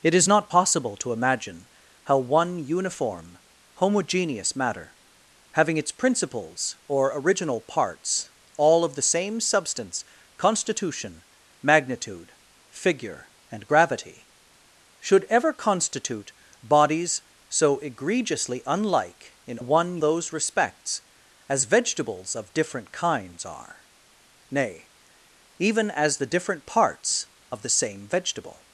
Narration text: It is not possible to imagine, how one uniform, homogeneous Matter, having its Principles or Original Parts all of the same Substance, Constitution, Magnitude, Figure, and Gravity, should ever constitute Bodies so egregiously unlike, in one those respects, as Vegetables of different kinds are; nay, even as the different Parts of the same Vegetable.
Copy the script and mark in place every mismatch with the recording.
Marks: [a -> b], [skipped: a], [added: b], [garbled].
It is not possible to imagine, how one uniform, homogeneous Matter, having its Principles or Original Parts all of the same Substance, Constitution, Magnitude, Figure, and Gravity, should ever constitute Bodies so egregiously unlike, in one those respects, as Vegetables of different kinds are; nay, even as the different Parts of the same Vegetable.